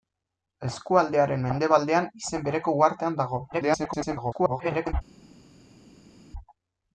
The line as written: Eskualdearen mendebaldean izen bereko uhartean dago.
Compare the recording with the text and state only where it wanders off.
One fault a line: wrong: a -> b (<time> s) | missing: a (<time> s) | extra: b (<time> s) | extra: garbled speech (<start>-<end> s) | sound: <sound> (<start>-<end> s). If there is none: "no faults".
extra: garbled speech (3.5-4.9 s)